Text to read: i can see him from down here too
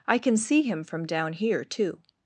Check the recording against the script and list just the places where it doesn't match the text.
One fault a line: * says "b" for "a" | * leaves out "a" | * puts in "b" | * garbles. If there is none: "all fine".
all fine